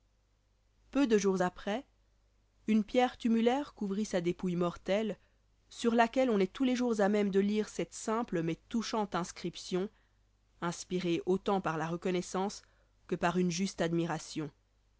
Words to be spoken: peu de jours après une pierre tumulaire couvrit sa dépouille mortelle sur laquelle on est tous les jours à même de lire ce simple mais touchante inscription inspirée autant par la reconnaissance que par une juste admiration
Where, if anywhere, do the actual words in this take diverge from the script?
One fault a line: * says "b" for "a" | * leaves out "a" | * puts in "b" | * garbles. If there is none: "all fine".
* says "cette" for "ce"